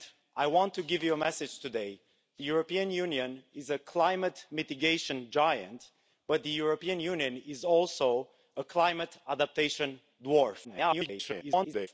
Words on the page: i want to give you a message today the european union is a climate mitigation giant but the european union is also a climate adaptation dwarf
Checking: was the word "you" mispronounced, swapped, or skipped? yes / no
no